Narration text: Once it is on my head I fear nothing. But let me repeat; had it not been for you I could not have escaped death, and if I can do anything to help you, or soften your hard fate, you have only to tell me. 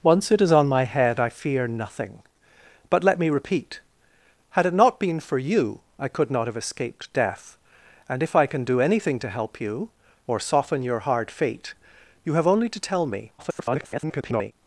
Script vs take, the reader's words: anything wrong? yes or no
yes